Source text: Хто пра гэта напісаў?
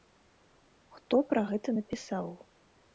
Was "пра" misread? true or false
false